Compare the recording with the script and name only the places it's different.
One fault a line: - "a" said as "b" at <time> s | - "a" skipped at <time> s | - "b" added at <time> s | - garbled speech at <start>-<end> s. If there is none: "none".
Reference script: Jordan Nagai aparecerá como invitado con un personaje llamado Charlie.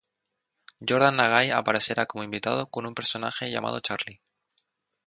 none